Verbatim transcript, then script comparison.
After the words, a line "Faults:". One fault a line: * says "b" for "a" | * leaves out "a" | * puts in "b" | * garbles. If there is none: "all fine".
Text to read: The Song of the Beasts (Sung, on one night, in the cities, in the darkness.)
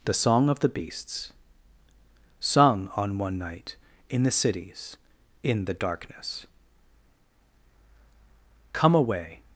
The Song of the Beasts (Sung, on one night, in the cities, in the darkness.) Come away
Faults:
* puts in "Come away"